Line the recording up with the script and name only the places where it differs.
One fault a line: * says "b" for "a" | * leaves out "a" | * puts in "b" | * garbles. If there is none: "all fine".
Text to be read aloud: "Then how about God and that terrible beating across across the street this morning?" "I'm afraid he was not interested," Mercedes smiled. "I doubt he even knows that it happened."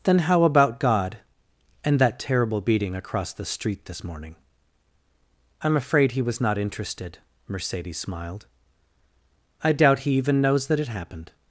* leaves out "across"